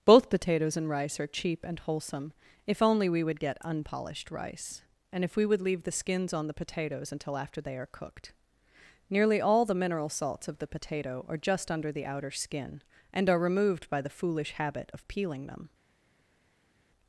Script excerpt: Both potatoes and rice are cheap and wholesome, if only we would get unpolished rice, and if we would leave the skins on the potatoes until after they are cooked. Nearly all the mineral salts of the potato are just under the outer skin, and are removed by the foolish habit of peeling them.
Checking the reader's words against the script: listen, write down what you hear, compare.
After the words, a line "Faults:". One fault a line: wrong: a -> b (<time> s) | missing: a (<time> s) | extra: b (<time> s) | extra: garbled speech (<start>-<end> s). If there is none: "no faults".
Both potatoes and rice are cheap and wholesome, if only we would get unpolished rice, and if we would leave the skins on the potatoes until after they are cooked. Nearly all the mineral salts of the potato are just under the outer skin, and are removed by the foolish habit of peeling them.
Faults:
no faults